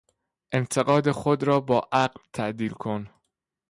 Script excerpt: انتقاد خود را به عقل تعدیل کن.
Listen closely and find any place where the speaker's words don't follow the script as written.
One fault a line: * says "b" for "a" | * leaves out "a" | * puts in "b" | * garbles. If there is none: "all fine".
* says "با" for "به"